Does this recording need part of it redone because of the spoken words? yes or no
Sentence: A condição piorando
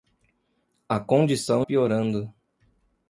no